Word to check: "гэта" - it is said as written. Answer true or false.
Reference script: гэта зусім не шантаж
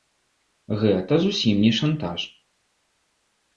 true